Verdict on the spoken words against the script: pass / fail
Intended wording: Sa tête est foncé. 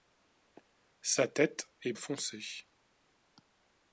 pass